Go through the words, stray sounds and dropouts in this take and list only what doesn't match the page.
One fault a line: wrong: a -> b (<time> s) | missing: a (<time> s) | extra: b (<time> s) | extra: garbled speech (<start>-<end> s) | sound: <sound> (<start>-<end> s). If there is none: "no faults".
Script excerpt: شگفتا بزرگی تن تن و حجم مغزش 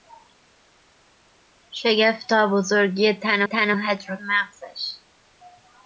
no faults